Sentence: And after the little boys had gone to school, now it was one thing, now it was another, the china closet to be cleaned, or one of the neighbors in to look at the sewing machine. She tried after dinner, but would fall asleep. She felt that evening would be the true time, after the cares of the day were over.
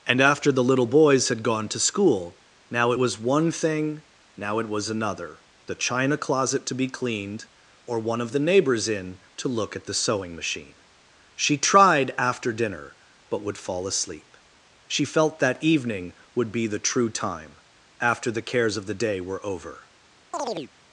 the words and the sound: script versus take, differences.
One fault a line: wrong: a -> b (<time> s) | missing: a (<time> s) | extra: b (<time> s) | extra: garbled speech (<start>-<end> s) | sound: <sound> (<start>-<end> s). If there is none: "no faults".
sound: chirp (20.3-20.7 s)